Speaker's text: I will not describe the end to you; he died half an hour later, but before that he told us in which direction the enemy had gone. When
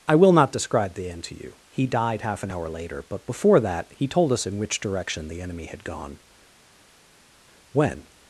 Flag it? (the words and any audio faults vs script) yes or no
no